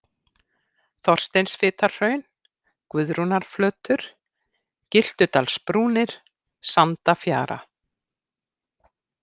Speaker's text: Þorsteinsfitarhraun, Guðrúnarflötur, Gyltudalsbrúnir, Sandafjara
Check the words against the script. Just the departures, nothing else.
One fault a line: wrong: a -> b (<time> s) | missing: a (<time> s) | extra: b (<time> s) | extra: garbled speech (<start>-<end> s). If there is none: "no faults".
no faults